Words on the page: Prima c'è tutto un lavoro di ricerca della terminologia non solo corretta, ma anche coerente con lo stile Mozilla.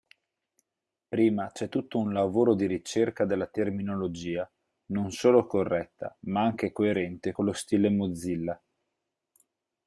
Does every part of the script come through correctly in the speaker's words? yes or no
yes